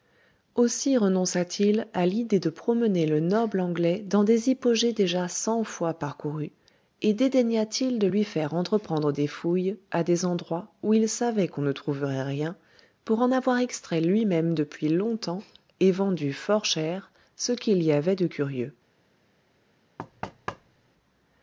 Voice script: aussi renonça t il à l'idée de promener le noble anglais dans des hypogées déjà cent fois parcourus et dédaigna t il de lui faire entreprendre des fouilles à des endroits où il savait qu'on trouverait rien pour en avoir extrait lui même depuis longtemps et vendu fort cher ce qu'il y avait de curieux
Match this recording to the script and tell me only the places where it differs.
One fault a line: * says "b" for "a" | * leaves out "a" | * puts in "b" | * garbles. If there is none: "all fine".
* puts in "ne"